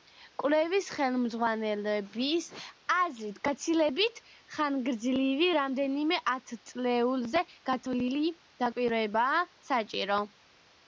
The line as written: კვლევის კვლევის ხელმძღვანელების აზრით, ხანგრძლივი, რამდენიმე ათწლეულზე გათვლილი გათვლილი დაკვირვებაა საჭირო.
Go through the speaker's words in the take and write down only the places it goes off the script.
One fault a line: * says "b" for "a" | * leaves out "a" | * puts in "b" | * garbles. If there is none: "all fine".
* leaves out "კვლევის"
* puts in "გაცილებით"
* leaves out "გათვლილი"